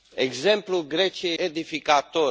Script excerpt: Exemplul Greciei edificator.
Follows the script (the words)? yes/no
yes